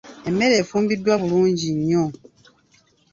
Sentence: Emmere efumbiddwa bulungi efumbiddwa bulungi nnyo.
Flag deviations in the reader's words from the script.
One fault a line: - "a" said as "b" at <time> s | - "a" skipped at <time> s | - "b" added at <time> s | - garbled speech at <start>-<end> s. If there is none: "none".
- "efumbiddwa bulungi" skipped at 1.7 s